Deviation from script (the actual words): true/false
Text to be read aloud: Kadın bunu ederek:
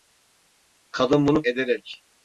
false